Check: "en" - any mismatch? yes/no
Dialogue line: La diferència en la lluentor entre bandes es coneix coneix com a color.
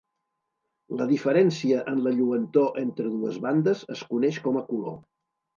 no